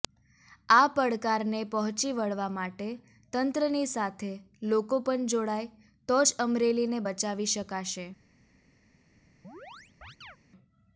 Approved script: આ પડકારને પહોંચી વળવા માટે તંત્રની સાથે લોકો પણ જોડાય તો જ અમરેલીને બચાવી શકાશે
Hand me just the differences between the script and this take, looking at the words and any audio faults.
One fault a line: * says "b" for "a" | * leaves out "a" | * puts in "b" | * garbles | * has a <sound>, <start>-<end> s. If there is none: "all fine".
* has a chirp, 9.4-10.4 s